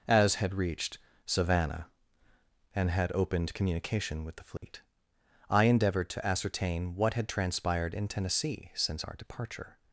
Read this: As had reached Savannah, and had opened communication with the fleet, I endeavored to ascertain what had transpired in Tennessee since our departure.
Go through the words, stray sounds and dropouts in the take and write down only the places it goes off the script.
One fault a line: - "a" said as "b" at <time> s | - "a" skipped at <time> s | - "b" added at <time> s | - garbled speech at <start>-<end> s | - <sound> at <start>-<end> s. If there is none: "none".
- dropout at 4.6-4.6 s